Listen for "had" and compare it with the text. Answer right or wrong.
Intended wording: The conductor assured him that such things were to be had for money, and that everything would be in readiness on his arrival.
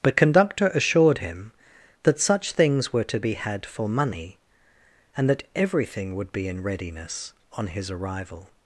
right